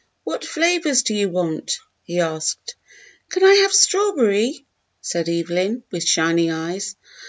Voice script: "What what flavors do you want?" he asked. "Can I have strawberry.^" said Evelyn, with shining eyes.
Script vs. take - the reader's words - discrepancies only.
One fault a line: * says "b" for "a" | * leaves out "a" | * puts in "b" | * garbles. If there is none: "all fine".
* leaves out "what"